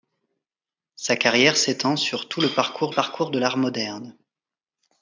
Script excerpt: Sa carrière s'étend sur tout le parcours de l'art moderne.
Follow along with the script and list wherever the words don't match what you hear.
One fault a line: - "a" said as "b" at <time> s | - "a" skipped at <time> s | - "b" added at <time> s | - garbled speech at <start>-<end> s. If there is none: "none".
- "parcours" added at 2.9 s